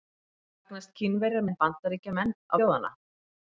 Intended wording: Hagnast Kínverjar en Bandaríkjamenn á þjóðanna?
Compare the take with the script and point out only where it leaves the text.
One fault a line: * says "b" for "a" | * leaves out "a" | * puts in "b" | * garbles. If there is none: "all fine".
all fine